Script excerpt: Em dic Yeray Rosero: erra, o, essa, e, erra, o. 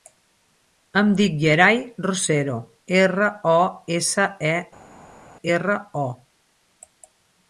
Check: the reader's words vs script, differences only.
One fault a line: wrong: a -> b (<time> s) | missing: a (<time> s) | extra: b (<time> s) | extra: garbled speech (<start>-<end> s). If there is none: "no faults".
no faults